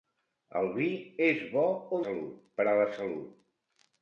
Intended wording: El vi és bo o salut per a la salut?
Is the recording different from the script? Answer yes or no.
no